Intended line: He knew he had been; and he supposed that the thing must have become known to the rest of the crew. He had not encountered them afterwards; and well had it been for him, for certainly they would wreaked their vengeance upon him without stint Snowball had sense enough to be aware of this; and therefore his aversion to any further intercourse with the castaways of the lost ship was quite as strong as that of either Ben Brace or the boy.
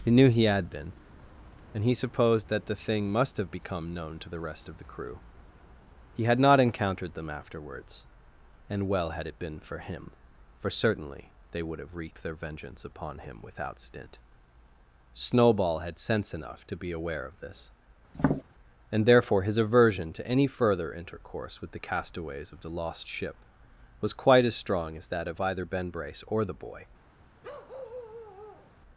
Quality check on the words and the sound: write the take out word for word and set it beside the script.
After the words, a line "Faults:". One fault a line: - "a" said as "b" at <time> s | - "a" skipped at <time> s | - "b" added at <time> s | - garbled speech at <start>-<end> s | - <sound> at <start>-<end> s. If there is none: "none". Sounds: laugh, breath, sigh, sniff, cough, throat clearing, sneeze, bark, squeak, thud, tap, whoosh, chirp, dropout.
He knew he had been; and he supposed that the thing must have become known to the rest of the crew. He had not encountered them afterwards; and well had it been for him, for certainly they would have wreaked their vengeance upon him without stint Snowball had sense enough to be aware of this; and therefore his aversion to any further intercourse with the castaways of the lost ship was quite as strong as that of either Ben Brace or the boy.
Faults:
- "have" added at 11.8 s
- tap at 18.1-18.4 s
- bark at 27.4-28.7 s